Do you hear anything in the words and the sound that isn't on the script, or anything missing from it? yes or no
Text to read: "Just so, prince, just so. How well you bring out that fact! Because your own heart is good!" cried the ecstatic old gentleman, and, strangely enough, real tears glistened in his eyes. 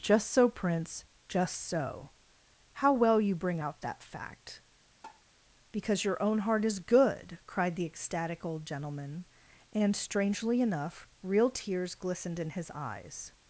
yes